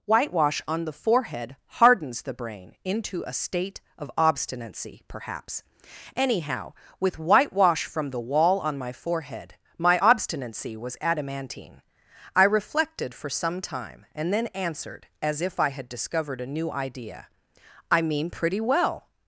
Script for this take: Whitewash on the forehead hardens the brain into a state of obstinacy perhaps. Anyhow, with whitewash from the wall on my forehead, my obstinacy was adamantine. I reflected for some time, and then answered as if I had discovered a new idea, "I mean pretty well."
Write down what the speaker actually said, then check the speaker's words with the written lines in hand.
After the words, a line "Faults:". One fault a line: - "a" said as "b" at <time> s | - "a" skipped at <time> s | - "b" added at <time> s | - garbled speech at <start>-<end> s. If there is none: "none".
Whitewash on the forehead hardens the brain into a state of obstinacy perhaps. Anyhow, with whitewash from the wall on my forehead, my obstinacy was adamantine. I reflected for some time, and then answered as if I had discovered a new idea, "I mean pretty well."
Faults:
none